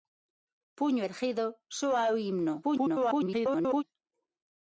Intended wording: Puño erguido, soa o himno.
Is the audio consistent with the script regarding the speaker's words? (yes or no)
no